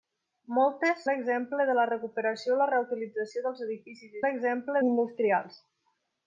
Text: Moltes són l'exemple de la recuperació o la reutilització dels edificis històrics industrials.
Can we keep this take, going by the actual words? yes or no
no